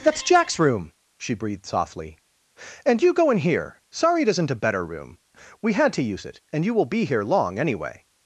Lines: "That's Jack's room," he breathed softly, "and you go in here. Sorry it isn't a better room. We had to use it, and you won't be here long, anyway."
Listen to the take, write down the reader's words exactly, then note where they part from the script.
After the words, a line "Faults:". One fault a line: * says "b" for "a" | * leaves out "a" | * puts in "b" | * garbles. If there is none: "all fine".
"That's Jack's room," she breathed softly, "and you go in here. Sorry it isn't a better room. We had to use it, and you will be here long, anyway."
Faults:
* says "she" for "he"
* says "will" for "won't"